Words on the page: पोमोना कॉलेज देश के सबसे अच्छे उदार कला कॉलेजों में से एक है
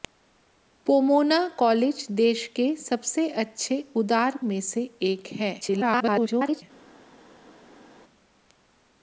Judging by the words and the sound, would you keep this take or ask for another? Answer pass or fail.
fail